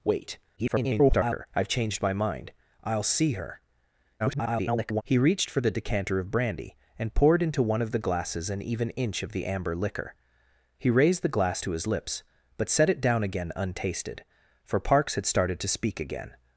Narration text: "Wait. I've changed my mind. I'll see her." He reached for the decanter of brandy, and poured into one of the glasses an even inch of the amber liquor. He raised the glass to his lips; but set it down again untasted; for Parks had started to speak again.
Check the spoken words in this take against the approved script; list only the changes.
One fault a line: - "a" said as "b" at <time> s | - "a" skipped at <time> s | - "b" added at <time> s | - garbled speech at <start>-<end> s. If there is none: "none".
- garbled speech at 0.6-1.5 s
- garbled speech at 4.2-5.0 s